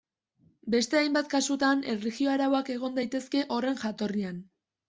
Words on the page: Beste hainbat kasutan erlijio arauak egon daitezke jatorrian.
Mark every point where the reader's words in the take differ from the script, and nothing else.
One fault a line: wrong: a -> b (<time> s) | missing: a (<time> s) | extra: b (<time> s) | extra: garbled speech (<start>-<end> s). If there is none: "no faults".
extra: horren (3.6 s)